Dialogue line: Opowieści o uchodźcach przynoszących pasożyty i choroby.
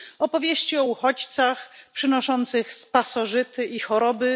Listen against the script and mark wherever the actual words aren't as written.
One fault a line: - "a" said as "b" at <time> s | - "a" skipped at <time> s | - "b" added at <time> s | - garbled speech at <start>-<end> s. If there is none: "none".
none